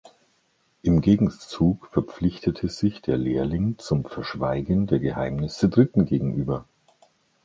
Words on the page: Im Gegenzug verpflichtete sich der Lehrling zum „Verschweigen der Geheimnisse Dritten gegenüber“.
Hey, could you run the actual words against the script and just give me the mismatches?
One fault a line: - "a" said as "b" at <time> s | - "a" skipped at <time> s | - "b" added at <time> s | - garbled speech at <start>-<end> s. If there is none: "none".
none